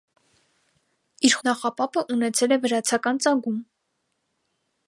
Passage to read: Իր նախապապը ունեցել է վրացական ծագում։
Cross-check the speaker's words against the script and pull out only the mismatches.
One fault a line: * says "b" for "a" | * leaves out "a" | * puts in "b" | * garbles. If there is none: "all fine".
all fine